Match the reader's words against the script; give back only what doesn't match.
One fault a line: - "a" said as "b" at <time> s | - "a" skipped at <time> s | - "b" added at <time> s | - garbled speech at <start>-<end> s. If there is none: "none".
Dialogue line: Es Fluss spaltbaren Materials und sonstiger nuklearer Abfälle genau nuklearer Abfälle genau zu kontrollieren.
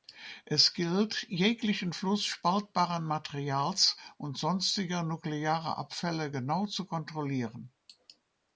- "gilt jeglichen" added at 0.7 s
- "nuklearer Abfälle genau" skipped at 6.7 s